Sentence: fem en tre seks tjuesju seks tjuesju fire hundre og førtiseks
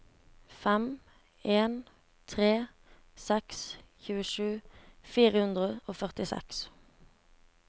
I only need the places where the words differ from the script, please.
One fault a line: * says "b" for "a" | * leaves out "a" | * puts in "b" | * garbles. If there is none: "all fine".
* leaves out "seks tjuesju"